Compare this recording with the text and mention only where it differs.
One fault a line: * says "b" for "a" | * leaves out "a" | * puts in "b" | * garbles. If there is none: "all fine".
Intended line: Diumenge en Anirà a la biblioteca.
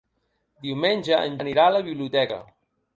all fine